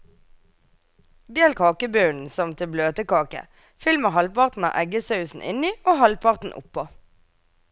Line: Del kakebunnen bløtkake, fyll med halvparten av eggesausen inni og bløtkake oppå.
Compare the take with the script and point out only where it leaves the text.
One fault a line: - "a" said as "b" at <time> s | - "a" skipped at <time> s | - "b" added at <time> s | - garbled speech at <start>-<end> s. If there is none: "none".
- "som til" added at 2.3 s
- "bløtkake" said as "halvparten" at 6.0 s